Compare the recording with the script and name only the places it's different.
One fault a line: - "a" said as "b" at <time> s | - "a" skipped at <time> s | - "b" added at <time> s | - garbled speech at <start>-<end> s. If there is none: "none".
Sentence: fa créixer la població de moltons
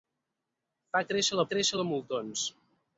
- "població" said as "créixer" at 1.5 s